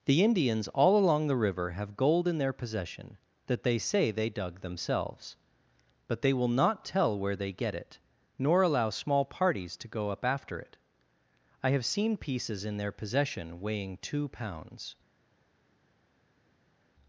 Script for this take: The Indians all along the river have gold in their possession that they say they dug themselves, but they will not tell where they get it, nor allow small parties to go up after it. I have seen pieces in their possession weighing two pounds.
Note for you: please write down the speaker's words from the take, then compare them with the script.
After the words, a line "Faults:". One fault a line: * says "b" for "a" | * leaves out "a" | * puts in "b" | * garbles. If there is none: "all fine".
The Indians all along the river have gold in their possession that they say they dug themselves, but they will not tell where they get it, nor allow small parties to go up after it. I have seen pieces in their possession weighing two pounds.
Faults:
all fine